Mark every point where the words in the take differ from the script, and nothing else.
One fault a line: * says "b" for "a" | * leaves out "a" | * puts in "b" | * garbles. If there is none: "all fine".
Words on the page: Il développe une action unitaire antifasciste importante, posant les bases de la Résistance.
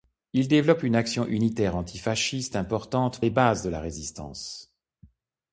* leaves out "posant"